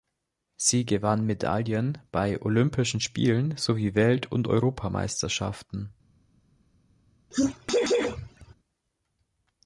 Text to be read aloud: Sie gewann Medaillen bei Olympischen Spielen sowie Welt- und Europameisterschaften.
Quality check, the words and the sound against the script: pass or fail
fail